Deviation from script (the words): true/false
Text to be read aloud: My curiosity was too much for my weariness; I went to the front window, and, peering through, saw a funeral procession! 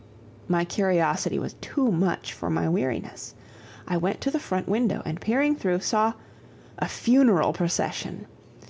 false